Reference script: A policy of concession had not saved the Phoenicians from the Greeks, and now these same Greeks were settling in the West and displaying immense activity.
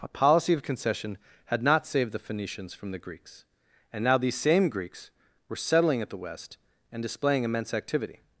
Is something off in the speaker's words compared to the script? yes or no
yes